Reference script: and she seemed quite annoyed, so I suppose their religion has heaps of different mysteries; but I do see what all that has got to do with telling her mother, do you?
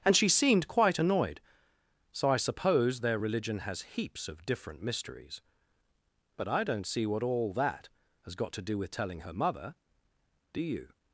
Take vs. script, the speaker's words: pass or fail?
fail